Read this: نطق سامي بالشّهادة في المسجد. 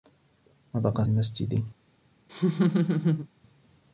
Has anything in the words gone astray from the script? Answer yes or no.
yes